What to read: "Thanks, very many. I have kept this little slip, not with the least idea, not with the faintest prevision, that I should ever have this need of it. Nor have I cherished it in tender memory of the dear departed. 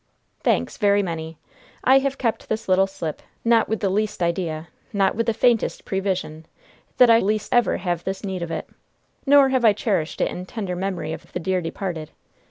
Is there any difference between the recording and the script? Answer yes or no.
yes